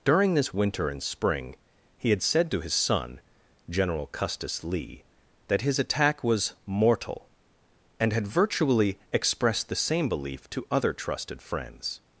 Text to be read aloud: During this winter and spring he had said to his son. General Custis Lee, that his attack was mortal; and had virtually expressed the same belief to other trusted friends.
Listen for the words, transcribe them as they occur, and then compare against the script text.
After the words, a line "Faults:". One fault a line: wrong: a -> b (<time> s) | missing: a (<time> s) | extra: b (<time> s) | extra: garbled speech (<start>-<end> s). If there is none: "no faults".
During this winter and spring he had said to his son. General Custis Lee, that his attack was mortal; and had virtually expressed the same belief to other trusted friends.
Faults:
no faults